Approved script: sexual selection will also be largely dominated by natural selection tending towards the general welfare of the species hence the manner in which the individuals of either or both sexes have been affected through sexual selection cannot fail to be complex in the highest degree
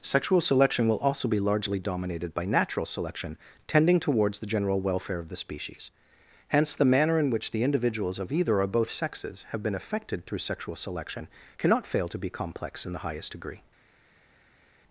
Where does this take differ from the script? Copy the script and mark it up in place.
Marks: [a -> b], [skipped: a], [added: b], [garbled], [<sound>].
sexual selection will also be largely dominated by natural selection tending towards the general welfare of the species hence the manner in which the individuals of either or both sexes have been affected through sexual selection cannot fail to be complex in the highest degree